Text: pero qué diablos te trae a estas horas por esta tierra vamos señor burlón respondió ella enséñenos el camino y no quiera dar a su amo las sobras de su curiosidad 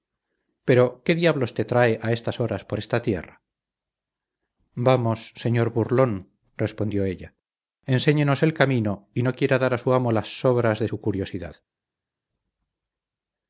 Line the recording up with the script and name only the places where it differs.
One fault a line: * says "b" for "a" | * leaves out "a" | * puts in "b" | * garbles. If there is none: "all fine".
all fine